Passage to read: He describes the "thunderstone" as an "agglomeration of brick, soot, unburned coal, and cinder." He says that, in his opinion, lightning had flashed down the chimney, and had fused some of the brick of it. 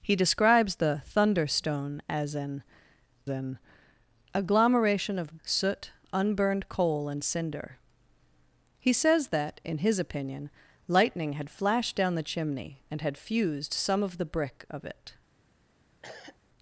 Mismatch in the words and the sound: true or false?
true